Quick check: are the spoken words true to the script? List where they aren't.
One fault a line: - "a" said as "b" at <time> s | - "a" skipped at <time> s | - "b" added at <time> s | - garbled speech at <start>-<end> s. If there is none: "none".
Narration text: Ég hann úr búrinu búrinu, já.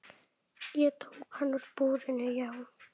- "tók" added at 1.0 s
- "búrinu" skipped at 2.3 s